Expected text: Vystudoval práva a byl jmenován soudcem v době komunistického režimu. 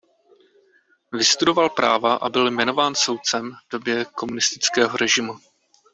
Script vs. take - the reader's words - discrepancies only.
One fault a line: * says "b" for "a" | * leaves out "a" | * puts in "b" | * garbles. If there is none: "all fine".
all fine